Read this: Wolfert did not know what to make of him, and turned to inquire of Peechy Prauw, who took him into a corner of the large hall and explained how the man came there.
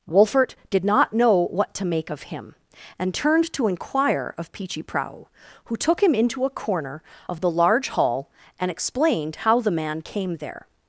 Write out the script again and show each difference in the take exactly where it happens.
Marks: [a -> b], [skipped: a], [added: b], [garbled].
Wolfert did not know what to make of him, and turned to inquire of Peechy Prauw, who took him into a corner of the large hall and explained how the man came there.